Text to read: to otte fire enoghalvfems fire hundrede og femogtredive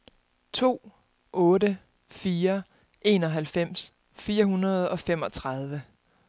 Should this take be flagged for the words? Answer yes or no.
no